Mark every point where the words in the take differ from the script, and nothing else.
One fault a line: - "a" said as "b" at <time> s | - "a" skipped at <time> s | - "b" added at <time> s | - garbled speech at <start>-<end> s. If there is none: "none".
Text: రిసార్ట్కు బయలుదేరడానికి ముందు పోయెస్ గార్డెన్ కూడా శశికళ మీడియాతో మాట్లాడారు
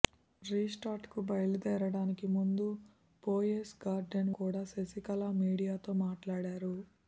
none